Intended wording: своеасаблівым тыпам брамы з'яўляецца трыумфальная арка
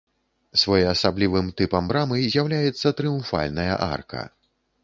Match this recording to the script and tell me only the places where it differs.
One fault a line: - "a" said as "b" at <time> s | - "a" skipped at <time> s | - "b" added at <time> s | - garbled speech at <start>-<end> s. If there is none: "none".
none